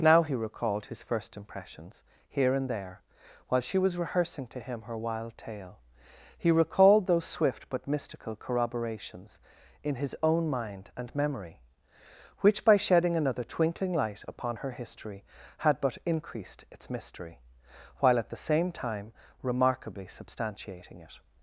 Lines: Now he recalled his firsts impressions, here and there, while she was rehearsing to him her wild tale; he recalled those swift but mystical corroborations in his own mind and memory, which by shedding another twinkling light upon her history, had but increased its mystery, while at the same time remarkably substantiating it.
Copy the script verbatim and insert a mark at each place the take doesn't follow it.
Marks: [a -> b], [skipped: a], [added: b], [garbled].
Now he recalled his [firsts -> first] impressions, here and there, while she was rehearsing to him her wild tale; he recalled those swift but mystical corroborations in his own mind and memory, which by shedding another twinkling light upon her history, had but increased its mystery, while at the same time remarkably substantiating it.